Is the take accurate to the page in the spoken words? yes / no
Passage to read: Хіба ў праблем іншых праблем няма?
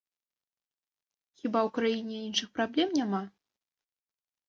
no